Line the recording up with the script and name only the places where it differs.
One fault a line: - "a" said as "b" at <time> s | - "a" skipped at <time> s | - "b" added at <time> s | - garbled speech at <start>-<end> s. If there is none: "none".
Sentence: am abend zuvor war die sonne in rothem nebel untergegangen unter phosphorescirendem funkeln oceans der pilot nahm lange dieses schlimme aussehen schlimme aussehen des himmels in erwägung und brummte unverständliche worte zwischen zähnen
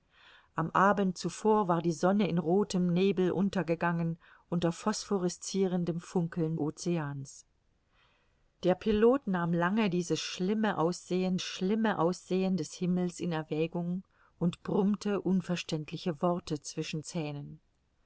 none